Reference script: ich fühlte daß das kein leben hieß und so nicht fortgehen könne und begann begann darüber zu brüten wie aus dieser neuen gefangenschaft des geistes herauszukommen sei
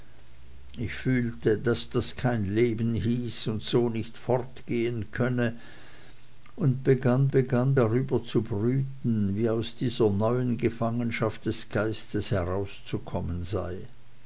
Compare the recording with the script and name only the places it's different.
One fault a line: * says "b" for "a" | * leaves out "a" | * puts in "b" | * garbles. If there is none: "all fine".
all fine